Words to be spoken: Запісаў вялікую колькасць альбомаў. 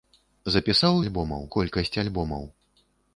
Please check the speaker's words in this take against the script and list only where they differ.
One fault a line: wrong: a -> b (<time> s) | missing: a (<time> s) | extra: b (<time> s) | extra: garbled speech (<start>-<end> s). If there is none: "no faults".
wrong: вялікую -> альбомаў (1.0 s)